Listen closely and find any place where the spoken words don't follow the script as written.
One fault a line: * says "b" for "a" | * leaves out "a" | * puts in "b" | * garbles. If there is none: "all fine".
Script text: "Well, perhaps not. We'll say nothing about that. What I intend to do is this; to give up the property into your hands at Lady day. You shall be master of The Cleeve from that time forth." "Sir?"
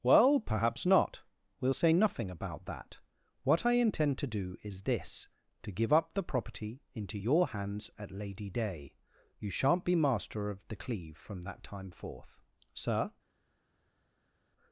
* says "shan't" for "shall"